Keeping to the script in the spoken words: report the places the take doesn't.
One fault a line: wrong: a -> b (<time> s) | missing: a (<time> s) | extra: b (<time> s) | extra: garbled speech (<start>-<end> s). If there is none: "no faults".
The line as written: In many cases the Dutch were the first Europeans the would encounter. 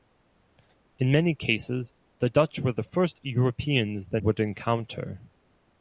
no faults